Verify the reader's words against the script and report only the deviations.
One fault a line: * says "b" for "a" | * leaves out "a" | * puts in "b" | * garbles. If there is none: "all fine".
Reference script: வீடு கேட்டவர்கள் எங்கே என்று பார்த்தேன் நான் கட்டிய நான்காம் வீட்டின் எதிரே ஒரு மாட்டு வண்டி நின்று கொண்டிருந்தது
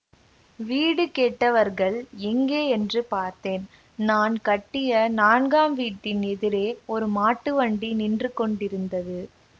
all fine